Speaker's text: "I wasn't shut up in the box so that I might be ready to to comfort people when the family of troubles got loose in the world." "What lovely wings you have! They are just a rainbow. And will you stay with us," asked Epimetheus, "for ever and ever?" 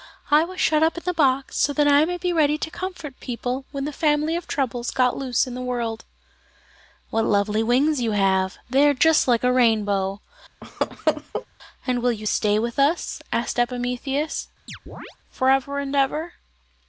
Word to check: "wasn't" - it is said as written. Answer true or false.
false